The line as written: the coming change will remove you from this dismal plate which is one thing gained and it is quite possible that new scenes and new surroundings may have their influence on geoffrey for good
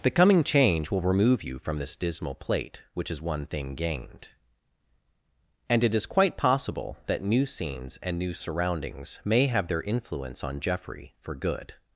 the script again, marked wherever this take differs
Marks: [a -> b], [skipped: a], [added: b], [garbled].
the coming change will remove you from this dismal plate which is one thing gained and it is quite possible that new scenes and new surroundings may have their influence on geoffrey for good